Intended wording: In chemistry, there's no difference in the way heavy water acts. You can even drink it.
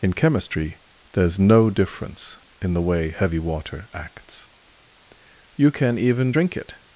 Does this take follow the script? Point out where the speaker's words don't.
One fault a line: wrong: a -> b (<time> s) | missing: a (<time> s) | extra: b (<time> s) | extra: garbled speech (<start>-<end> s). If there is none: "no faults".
no faults